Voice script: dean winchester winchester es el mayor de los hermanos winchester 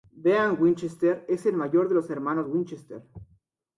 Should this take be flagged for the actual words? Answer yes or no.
yes